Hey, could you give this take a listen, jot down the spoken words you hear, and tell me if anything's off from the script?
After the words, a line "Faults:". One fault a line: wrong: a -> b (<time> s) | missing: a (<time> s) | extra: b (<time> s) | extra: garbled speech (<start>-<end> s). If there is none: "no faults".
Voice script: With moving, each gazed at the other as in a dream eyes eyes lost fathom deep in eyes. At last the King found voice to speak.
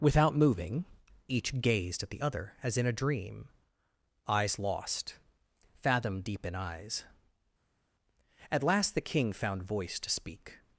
Without moving, each gazed at the other as in a dream eyes lost fathom deep in eyes. At last the King found voice to speak.
Faults:
wrong: With -> Without (0.0 s)
missing: eyes (4.6 s)